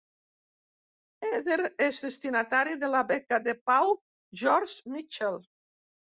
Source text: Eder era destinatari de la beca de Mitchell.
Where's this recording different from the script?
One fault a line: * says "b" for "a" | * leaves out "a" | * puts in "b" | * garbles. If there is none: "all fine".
* says "és" for "era"
* puts in "pau George"